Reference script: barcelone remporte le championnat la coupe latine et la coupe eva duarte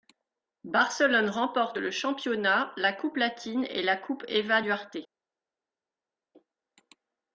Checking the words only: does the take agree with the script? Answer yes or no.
yes